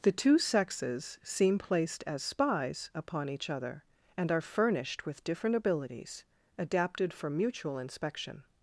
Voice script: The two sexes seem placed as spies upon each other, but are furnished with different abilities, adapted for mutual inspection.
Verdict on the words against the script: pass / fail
fail